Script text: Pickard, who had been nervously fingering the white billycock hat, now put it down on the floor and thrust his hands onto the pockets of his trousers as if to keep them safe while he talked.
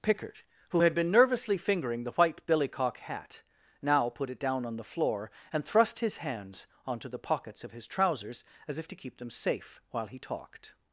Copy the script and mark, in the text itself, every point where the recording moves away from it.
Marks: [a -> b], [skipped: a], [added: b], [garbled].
Pickard, who had been nervously fingering the white billycock hat, now put it down on the floor and thrust his hands onto the pockets of his trousers as if to keep them safe while he talked.